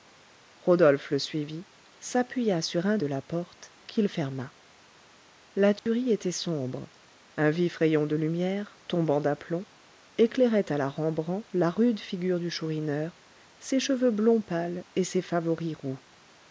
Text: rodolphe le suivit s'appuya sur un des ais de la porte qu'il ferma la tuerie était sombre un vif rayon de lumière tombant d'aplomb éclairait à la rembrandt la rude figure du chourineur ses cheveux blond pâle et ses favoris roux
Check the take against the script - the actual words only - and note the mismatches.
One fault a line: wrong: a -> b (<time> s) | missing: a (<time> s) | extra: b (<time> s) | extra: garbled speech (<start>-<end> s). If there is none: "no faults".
missing: des ais (3.0 s)